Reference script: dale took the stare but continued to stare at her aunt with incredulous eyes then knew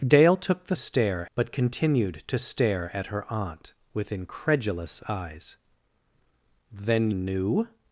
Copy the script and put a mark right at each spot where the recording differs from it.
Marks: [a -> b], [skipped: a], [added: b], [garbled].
dale took the stare but continued to stare at her aunt with incredulous eyes then knew